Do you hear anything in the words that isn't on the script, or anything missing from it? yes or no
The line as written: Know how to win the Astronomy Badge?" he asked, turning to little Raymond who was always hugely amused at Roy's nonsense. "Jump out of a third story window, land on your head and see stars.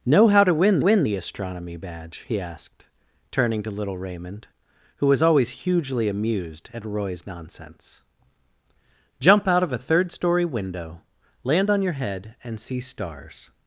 yes